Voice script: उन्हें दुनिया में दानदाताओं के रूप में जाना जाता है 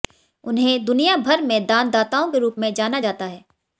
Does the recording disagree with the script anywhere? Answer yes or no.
yes